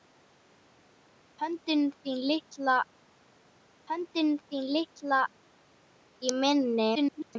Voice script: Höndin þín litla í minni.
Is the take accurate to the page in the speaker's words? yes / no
no